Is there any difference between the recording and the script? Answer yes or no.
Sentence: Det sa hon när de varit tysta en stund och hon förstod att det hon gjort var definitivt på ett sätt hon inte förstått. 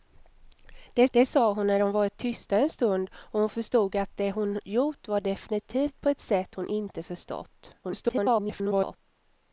yes